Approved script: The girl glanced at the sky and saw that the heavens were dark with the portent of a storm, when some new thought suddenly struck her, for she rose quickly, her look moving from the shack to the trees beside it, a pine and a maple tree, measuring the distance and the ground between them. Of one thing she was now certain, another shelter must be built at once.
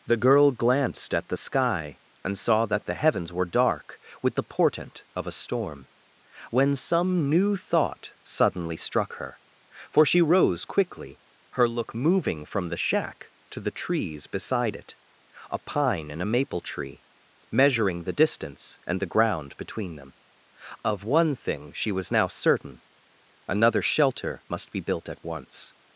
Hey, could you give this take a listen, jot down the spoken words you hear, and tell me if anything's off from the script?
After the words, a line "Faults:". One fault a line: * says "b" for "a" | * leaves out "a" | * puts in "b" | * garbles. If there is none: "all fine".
The girl glanced at the sky and saw that the heavens were dark with the portent of a storm, when some new thought suddenly struck her, for she rose quickly, her look moving from the shack to the trees beside it, a pine and a maple tree, measuring the distance and the ground between them. Of one thing she was now certain, another shelter must be built at once.
Faults:
all fine